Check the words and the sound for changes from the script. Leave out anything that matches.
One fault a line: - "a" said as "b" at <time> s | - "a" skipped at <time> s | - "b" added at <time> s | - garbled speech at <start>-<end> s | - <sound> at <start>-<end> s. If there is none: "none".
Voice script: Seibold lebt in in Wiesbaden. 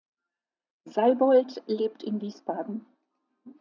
- "in" skipped at 2.2 s